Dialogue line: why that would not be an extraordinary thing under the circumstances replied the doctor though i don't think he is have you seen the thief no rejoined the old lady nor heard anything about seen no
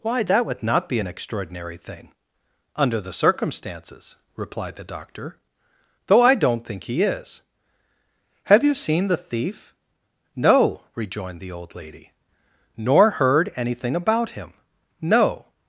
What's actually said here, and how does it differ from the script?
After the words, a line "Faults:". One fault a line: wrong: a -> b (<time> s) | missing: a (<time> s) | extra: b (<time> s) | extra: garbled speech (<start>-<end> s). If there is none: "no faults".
why that would not be an extraordinary thing under the circumstances replied the doctor though i don't think he is have you seen the thief no rejoined the old lady nor heard anything about him no
Faults:
wrong: seen -> him (14.3 s)